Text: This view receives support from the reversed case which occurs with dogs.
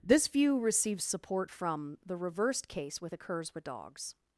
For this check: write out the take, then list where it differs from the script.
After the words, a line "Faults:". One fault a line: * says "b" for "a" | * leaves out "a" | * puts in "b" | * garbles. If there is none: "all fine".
This view receives support from the reversed case with occurs with dogs.
Faults:
* says "with" for "which"